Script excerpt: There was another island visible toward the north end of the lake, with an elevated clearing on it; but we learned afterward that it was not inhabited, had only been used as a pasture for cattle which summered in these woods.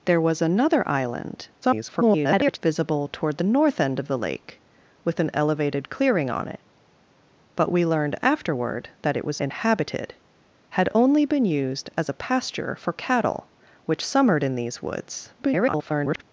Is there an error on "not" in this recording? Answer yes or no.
yes